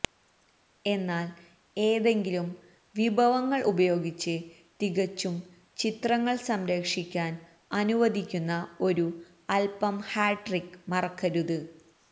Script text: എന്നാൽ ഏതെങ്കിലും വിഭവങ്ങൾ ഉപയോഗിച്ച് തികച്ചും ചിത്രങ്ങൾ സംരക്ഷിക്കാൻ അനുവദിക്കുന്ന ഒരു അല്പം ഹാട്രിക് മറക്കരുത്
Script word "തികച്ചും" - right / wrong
right